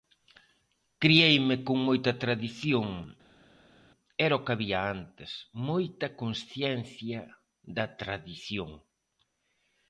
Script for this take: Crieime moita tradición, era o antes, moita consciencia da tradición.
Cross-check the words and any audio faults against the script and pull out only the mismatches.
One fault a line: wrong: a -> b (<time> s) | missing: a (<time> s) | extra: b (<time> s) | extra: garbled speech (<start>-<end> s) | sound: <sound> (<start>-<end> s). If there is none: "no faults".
extra: con (1.7 s)
extra: que había (4.4 s)